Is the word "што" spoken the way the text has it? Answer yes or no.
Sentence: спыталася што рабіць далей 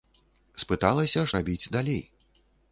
no